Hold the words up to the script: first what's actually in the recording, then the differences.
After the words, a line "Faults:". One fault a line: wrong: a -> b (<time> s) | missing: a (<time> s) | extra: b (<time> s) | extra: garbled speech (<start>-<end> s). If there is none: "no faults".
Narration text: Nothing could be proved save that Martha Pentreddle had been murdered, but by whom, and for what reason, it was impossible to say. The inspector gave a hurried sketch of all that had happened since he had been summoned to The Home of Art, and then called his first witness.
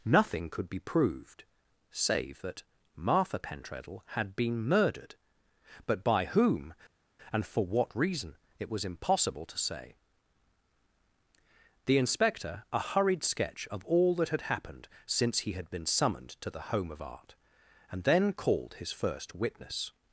Nothing could be proved save that Martha Pentreddle had been murdered, but by whom, and for what reason, it was impossible to say. The inspector a hurried sketch of all that had happened since he had been summoned to The Home of Art, and then called his first witness.
Faults:
missing: gave (12.6 s)